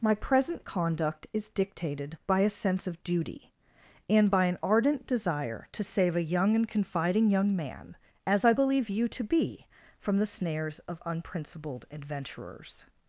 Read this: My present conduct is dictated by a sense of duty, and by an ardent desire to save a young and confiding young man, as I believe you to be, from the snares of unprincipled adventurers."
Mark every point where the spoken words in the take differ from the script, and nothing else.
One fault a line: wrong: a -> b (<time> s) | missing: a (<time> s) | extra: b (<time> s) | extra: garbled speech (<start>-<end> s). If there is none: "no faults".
no faults